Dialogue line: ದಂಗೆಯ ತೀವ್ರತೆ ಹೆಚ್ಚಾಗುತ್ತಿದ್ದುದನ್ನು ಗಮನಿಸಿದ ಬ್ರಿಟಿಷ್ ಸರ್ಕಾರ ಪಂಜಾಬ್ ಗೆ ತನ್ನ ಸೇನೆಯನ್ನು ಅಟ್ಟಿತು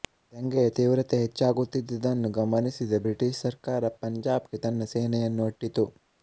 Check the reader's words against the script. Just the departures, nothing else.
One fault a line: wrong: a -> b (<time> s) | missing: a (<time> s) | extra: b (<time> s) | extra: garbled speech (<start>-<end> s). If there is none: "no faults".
no faults